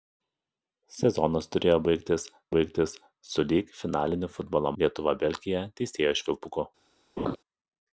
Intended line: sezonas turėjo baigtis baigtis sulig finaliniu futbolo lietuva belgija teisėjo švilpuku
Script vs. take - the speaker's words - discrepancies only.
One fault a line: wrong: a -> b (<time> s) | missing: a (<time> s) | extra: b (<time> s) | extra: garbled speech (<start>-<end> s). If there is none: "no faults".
no faults